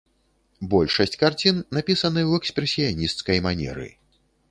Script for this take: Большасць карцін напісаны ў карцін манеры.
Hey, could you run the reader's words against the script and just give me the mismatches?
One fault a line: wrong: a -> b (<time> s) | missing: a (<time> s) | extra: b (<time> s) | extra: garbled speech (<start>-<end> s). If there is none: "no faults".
wrong: карцін -> экспрэсіянісцкай (2.4 s)